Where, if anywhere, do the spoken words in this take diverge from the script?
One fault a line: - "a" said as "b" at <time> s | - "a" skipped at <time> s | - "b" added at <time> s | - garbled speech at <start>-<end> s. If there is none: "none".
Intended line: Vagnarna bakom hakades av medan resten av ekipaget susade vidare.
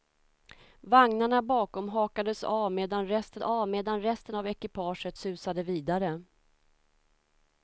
- "medan resten av" added at 3.7 s